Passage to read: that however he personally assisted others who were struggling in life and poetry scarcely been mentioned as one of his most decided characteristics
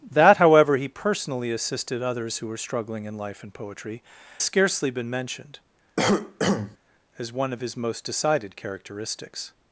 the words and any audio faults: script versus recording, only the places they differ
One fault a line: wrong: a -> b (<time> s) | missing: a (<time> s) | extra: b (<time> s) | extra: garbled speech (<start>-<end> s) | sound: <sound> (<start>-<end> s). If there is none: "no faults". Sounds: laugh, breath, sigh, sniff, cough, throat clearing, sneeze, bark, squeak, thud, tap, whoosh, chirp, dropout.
sound: cough (6.0-6.8 s)